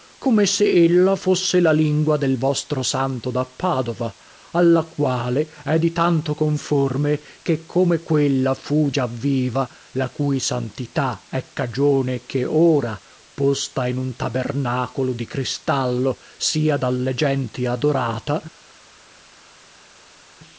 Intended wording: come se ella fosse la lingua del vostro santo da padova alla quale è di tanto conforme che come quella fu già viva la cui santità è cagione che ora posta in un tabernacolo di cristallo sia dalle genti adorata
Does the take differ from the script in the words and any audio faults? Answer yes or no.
no